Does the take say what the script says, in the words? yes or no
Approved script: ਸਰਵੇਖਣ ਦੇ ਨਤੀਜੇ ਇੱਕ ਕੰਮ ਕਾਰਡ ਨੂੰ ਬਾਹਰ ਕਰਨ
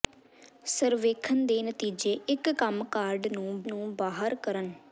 no